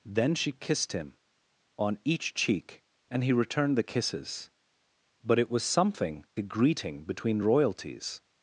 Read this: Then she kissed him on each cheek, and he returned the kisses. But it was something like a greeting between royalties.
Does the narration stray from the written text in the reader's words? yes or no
yes